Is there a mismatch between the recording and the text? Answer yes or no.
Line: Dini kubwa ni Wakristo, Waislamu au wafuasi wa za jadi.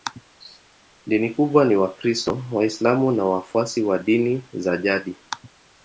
yes